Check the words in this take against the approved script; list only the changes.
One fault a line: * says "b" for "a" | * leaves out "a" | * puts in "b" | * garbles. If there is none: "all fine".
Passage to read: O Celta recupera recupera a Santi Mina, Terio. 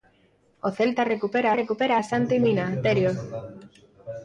all fine